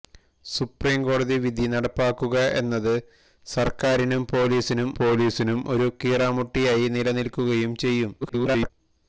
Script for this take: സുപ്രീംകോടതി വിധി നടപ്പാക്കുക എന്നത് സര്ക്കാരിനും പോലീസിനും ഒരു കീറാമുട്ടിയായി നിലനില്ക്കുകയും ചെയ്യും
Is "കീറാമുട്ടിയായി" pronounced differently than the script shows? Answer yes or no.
no